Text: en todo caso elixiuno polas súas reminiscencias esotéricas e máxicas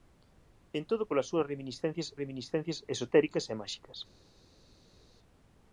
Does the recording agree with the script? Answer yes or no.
no